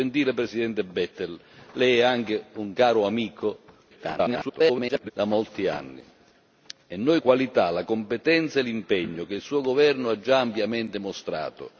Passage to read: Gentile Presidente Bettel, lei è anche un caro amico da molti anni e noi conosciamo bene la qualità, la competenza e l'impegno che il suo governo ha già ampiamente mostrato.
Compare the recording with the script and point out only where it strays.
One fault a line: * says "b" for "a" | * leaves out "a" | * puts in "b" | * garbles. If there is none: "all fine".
* garbles
* leaves out "conosciamo bene la"